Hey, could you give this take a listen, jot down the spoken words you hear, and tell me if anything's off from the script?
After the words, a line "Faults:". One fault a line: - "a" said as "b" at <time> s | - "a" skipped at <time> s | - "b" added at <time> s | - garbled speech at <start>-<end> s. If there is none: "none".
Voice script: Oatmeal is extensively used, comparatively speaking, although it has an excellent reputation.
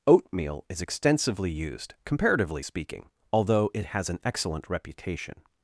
Oatmeal is extensively used, comparatively speaking, although it has an excellent reputation.
Faults:
none